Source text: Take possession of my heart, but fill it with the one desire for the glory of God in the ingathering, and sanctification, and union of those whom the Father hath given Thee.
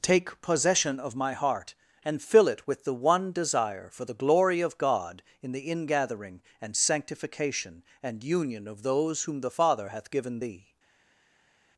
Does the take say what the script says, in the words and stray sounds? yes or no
no